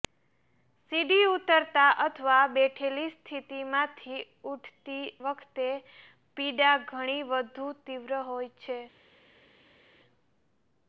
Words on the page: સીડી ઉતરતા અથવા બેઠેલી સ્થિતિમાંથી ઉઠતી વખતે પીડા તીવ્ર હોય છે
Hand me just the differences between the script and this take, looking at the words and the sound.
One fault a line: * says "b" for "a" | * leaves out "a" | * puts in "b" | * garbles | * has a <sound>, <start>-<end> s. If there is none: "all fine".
* puts in "ઘણી વધુ"